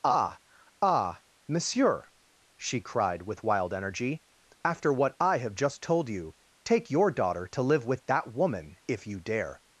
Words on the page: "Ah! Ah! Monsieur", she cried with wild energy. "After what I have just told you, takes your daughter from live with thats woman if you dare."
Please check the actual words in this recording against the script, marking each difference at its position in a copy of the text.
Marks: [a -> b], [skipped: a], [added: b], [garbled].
"Ah! Ah! Monsieur", she cried with wild energy. "After what I have just told you, [takes -> take] your daughter [from -> to] live with [thats -> that] woman if you dare."